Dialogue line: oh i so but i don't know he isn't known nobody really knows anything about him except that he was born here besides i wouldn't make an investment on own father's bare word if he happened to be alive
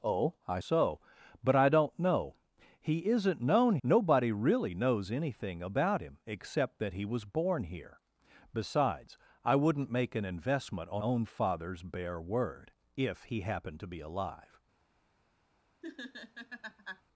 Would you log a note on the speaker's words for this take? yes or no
no